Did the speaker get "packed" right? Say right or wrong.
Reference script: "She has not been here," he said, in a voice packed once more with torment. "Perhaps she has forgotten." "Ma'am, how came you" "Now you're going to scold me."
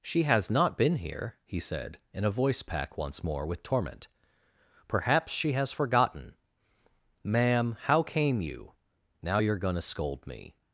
wrong